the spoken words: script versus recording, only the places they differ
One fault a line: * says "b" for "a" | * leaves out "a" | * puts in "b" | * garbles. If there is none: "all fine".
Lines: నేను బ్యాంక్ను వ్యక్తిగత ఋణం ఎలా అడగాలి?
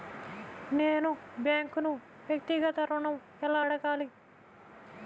all fine